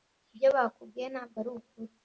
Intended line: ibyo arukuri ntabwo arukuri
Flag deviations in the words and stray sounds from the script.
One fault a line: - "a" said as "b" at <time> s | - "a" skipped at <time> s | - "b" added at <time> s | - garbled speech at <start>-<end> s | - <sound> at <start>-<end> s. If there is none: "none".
- "arukuri" said as "bakubwiye" at 0.5 s